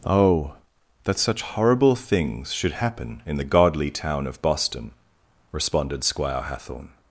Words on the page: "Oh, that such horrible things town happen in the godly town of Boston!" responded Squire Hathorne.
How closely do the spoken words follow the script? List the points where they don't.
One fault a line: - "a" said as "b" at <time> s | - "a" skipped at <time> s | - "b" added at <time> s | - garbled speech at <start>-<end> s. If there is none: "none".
- "town" said as "should" at 2.5 s